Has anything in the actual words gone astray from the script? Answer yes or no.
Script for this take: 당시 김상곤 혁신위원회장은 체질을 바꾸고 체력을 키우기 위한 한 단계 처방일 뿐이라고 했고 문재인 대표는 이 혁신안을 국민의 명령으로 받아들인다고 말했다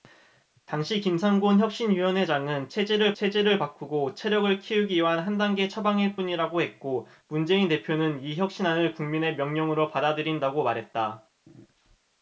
yes